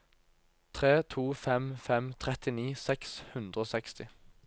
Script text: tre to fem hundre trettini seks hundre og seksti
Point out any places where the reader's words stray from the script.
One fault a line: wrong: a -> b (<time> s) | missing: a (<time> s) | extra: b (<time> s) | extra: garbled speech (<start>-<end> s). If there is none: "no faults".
wrong: hundre -> fem (1.9 s)